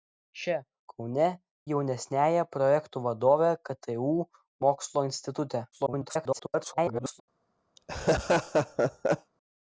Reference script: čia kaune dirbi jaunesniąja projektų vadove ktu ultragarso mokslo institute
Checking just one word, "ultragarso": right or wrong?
wrong